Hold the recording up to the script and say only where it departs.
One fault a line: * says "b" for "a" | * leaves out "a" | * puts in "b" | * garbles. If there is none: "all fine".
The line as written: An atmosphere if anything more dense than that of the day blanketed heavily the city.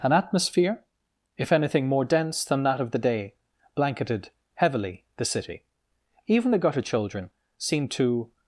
* puts in "Even the gutter children seemed to"